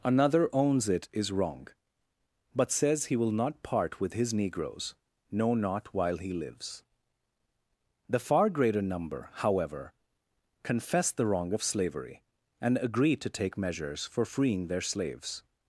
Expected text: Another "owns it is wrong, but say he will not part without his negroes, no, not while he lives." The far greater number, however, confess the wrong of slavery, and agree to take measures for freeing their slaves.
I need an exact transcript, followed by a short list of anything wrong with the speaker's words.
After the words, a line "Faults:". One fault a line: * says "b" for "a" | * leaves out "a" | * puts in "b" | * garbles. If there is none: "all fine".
Another "owns it is wrong, but says he will not part with his negroes, no, not while he lives." The far greater number, however, confess the wrong of slavery, and agree to take measures for freeing their slaves.
Faults:
* says "says" for "say"
* says "with" for "without"